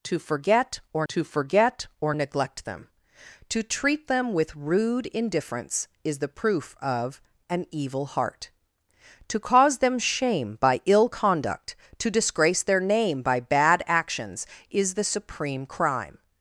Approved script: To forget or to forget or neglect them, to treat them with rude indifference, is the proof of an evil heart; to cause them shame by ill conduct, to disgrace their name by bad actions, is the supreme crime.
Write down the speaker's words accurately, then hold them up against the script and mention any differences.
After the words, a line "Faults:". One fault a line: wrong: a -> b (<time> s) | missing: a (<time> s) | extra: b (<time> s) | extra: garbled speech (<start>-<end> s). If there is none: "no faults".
To forget or to forget or neglect them, to treat them with rude indifference, is the proof of an evil heart; to cause them shame by ill conduct, to disgrace their name by bad actions, is the supreme crime.
Faults:
no faults